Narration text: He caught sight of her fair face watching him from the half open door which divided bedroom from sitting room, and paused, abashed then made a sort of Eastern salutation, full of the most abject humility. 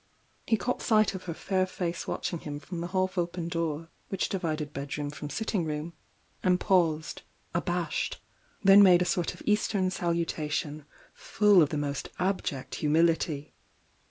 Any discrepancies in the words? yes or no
no